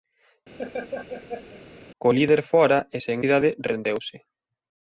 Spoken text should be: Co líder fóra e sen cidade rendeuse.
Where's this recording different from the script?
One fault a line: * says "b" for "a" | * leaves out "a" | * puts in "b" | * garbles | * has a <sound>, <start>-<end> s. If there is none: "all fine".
* has a laugh, 0.6-1.6 s